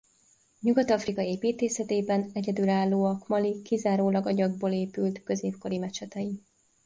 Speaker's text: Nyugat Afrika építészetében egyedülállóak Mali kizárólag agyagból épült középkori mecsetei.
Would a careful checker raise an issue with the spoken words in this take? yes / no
no